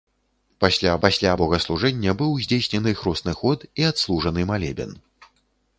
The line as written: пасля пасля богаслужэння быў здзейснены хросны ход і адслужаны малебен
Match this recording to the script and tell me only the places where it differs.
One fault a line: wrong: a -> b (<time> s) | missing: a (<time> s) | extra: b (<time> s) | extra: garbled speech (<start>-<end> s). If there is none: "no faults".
no faults